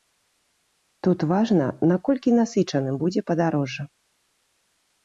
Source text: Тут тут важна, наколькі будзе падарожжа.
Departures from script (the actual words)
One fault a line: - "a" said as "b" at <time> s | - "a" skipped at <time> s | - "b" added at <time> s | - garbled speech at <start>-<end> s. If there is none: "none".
- "тут" skipped at 1.2 s
- "насычаным" added at 2.4 s